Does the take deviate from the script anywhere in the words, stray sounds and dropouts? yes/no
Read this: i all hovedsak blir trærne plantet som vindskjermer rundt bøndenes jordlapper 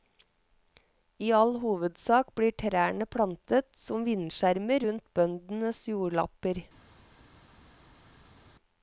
no